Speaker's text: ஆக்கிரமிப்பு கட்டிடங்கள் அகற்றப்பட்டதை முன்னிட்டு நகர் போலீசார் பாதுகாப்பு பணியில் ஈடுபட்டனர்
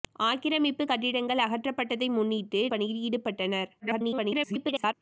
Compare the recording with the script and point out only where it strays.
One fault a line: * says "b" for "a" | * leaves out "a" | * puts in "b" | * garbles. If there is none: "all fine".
* leaves out "நகர் போலீசார் பாதுகாப்பு"
* garbles